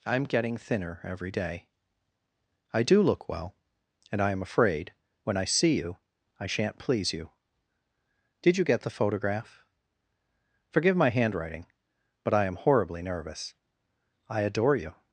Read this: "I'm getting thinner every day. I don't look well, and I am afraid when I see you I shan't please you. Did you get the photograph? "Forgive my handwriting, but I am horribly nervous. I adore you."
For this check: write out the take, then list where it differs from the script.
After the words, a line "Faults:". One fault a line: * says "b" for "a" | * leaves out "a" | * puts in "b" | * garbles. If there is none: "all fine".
"I'm getting thinner every day. I do look well, and I am afraid when I see you I shan't please you. Did you get the photograph? "Forgive my handwriting, but I am horribly nervous. I adore you."
Faults:
* says "do" for "don't"